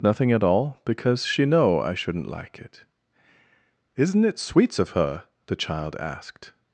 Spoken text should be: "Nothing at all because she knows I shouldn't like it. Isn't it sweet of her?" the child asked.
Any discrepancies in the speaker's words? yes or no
yes